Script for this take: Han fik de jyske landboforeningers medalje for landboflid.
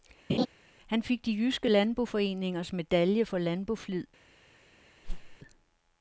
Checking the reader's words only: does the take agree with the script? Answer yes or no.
yes